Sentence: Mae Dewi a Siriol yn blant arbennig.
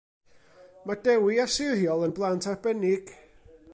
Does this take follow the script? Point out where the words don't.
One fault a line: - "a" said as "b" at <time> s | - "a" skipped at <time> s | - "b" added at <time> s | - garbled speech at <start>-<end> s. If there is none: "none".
none